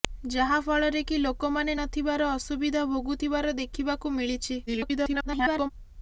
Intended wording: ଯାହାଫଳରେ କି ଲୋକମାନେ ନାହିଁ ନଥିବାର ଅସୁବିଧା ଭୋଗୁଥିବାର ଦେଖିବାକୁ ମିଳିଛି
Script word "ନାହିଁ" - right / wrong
wrong